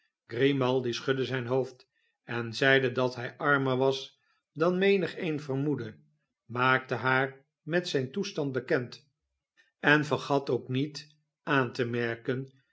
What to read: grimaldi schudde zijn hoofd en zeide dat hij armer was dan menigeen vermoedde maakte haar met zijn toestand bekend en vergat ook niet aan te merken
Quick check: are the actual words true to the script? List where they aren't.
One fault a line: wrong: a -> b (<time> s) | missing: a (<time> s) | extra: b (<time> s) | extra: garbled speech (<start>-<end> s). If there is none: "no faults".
no faults